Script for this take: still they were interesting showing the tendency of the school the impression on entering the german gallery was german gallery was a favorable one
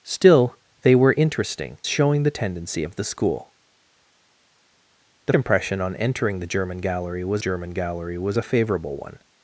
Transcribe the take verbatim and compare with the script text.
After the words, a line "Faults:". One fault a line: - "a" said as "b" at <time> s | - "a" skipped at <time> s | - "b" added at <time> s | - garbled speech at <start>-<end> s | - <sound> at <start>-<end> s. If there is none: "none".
still they were interesting showing the tendency of the school the impression on entering the german gallery was german gallery was a favorable one
Faults:
none